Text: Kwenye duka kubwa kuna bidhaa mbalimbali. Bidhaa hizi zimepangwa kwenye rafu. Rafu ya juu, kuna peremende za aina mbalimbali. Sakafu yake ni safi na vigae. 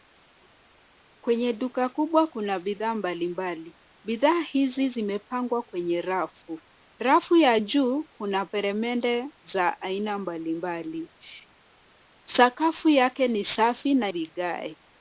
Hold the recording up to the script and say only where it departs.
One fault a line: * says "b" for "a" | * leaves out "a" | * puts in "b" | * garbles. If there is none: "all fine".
all fine